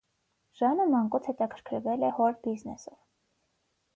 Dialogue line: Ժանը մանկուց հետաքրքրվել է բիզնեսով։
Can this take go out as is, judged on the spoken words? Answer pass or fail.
fail